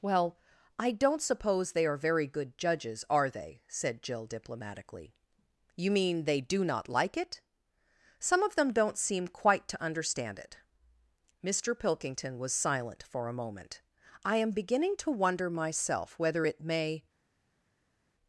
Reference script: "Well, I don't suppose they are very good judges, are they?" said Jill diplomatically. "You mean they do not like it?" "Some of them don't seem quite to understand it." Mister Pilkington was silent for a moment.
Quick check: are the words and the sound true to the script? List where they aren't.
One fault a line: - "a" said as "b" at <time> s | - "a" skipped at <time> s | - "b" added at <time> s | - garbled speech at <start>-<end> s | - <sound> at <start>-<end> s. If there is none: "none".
- "I am beginning to wonder myself whether it may" added at 14.2 s